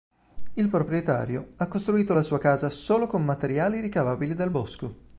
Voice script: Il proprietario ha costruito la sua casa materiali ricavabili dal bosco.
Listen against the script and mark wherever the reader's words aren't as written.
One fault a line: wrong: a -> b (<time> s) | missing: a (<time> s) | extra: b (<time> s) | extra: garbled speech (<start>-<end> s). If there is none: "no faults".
extra: solo con (2.7 s)